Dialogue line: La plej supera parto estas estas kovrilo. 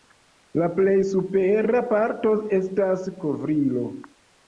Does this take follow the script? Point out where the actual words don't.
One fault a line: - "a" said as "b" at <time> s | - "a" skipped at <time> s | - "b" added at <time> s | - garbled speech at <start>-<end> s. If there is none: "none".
- "estas" skipped at 3.1 s